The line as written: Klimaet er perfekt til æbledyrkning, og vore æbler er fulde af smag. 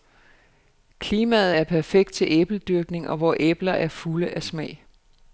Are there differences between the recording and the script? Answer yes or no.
no